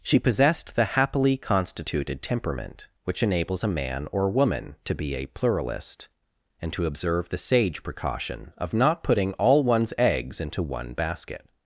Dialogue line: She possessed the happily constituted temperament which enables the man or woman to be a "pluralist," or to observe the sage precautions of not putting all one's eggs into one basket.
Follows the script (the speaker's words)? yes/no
no